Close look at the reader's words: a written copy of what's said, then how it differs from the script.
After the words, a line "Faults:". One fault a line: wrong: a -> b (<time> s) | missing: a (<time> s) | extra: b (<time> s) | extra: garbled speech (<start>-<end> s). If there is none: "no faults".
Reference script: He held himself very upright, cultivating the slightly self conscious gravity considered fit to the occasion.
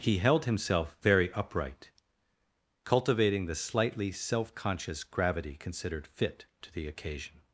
He held himself very upright, cultivating the slightly self conscious gravity considered fit to the occasion.
Faults:
no faults